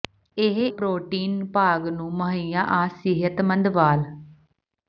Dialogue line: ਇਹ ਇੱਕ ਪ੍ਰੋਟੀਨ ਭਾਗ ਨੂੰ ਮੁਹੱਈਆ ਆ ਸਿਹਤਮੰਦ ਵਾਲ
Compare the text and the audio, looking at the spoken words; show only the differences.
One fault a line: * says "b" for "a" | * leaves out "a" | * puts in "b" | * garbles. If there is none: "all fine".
* leaves out "ਇੱਕ"